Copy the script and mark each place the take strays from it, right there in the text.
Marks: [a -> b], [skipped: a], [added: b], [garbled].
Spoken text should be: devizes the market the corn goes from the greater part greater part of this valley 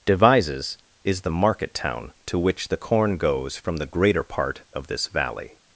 devizes [added: is] the market [added: town to which] the corn goes from the greater part [skipped: greater part] of this valley